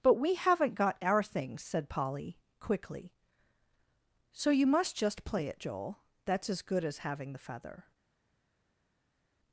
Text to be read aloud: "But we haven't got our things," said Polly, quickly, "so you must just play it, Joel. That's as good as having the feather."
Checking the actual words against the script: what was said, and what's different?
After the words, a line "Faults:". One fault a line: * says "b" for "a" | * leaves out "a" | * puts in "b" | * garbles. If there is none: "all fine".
"But we haven't got our things," said Polly, quickly, "so you must just play it, Joel. That's as good as having the feather."
Faults:
all fine